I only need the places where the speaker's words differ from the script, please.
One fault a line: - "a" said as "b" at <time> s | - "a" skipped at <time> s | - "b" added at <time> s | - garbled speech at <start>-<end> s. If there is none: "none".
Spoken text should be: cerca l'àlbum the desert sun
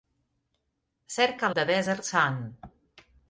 - "l'àlbum" skipped at 1.5 s